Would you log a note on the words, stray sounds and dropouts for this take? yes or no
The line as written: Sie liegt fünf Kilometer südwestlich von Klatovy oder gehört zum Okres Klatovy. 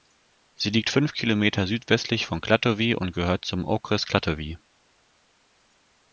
yes